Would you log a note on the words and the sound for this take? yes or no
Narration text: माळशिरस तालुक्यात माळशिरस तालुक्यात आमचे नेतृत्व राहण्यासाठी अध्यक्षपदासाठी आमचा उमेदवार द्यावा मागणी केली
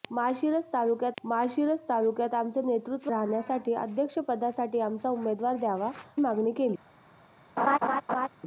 yes